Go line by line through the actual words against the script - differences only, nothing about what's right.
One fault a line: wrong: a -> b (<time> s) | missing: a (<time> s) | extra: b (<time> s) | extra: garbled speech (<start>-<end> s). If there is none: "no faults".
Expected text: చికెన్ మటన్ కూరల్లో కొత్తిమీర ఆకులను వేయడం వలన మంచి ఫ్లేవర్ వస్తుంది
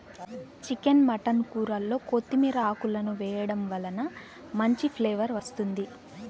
no faults